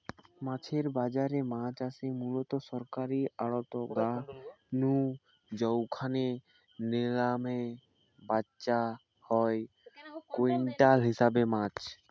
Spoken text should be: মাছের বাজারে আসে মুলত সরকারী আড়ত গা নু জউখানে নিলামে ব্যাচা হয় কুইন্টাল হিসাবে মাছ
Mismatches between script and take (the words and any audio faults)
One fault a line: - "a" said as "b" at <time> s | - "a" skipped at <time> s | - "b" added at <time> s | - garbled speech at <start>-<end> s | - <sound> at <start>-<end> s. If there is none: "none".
- "মাছ" added at 1.5 s